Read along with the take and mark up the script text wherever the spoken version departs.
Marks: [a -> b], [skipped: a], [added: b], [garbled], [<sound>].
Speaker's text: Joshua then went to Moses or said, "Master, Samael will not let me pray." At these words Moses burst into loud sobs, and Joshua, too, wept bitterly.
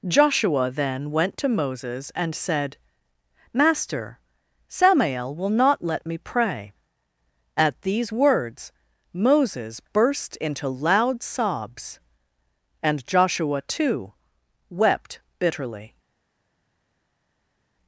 Joshua then went to Moses [or -> and] said, "Master, Samael will not let me pray." At these words Moses burst into loud sobs, and Joshua, too, wept bitterly.